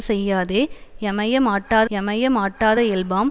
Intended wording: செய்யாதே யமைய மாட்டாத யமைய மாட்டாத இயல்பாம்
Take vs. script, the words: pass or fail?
pass